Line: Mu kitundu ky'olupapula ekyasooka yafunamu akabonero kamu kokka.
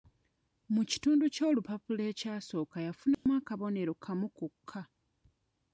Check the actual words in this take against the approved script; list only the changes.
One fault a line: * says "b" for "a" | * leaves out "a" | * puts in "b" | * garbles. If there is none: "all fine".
all fine